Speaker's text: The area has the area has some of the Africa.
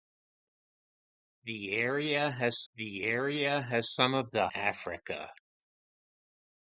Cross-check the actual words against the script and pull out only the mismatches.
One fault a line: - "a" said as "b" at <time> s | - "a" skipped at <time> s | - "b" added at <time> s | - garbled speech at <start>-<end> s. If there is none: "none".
none